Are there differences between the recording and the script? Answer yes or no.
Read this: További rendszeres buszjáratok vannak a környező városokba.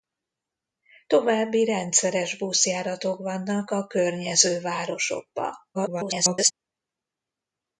yes